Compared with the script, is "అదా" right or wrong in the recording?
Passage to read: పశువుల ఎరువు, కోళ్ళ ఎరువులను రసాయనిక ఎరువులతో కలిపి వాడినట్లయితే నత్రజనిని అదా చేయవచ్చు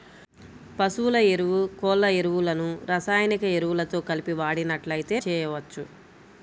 wrong